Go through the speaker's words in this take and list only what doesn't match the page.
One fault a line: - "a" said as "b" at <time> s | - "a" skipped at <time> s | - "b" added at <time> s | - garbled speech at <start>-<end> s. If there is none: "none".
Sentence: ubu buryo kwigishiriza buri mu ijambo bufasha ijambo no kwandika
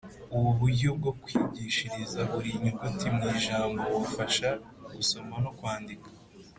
- "bwo" added at 1.0 s
- "nyuguti" added at 2.6 s
- "ijambo" said as "gusoma" at 5.0 s